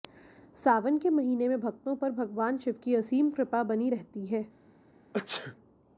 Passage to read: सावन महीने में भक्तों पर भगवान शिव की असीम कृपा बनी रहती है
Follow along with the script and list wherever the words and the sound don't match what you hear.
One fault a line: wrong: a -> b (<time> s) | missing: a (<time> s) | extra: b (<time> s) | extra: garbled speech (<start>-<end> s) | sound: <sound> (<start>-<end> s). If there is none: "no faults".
extra: के (1.0 s)
sound: sneeze (5.1-5.6 s)